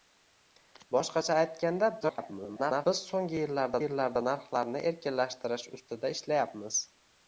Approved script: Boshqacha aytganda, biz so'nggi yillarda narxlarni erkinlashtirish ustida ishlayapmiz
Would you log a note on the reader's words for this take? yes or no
yes